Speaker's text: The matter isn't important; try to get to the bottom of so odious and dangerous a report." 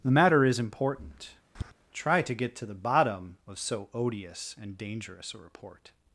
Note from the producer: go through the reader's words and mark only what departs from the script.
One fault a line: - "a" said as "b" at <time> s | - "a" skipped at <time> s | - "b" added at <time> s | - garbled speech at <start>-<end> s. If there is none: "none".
- "isn't" said as "is" at 0.4 s